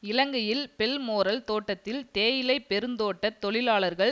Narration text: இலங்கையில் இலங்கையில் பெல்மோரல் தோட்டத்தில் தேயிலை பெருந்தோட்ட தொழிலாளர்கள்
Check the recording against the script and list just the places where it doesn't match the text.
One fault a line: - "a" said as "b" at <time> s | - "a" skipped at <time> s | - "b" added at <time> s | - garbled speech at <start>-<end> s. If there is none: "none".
- "இலங்கையில்" skipped at 0.6 s